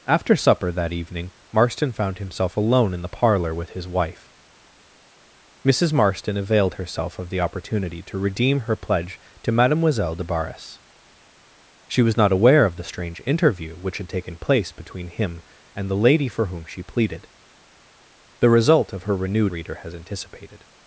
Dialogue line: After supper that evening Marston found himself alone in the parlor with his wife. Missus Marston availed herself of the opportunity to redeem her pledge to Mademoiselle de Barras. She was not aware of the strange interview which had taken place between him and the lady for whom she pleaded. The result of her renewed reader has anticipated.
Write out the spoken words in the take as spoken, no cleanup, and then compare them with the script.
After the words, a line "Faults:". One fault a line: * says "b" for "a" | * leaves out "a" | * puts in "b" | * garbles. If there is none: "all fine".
After supper that evening Marston found himself alone in the parlor with his wife. Missus Marston availed herself of the opportunity to redeem her pledge to Mademoiselle de Barras. She was not aware of the strange interview which had taken place between him and the lady for whom she pleaded. The result of her renewed reader has anticipated.
Faults:
all fine